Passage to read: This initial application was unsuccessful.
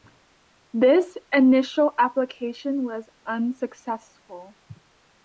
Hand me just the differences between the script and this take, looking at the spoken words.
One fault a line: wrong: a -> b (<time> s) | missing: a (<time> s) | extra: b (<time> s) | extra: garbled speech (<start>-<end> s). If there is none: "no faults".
no faults